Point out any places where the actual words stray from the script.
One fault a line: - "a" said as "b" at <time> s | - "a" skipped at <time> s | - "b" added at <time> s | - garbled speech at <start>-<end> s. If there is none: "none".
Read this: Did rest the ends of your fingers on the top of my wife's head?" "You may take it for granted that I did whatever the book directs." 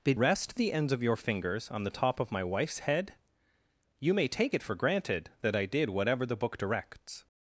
none